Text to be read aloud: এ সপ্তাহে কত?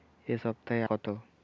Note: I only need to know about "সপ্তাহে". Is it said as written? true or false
true